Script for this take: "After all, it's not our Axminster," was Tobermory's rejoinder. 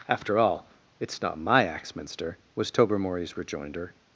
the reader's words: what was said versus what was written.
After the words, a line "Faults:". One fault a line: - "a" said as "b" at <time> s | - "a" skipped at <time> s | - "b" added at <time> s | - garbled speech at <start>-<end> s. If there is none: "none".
"After all, it's not my Axminster," was Tobermory's rejoinder.
Faults:
- "our" said as "my" at 1.4 s